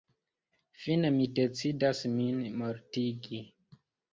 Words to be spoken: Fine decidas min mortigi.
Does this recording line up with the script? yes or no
no